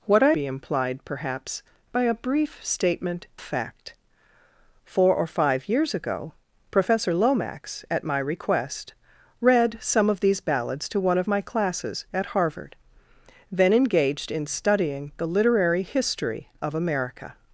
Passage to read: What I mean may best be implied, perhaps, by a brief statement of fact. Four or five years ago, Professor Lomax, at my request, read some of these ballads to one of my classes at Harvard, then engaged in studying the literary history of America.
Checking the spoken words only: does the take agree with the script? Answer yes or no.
no